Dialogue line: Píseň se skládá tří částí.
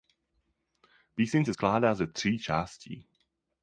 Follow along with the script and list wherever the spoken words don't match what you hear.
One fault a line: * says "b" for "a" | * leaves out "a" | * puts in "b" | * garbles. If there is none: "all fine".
* puts in "ze"